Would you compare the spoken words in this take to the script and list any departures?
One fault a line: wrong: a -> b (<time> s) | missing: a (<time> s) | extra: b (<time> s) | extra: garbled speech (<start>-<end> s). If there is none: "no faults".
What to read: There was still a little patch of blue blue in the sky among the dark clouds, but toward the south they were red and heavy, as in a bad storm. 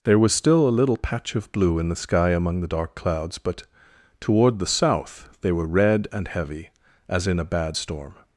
missing: blue (1.8 s)